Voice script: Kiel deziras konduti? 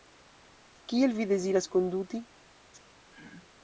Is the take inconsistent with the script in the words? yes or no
yes